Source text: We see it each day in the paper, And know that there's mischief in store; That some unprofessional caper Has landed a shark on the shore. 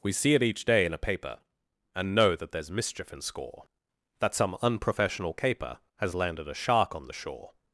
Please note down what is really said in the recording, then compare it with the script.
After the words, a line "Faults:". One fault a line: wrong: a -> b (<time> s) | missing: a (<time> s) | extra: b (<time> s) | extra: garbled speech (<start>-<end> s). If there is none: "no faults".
We see it each day in a paper, And know that there's mischief in score; That some unprofessional caper Has landed a shark on the shore.
Faults:
wrong: the -> a (0.9 s)
wrong: store -> score (3.2 s)